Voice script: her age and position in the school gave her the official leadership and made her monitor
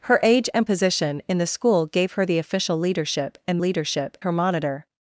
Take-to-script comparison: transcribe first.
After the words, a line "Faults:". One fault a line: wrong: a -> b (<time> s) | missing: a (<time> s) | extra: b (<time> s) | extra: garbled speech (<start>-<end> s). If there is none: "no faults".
her age and position in the school gave her the official leadership and leadership her monitor
Faults:
wrong: made -> leadership (3.6 s)